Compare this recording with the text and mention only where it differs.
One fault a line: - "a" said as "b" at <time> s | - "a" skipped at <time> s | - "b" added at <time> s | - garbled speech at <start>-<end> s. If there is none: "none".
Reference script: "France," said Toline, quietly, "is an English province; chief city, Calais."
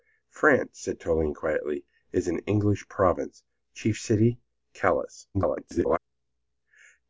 - garbled speech at 5.3-6.0 s